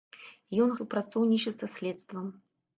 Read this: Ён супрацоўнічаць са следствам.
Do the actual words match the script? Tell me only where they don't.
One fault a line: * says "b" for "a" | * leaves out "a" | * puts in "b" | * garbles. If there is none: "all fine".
all fine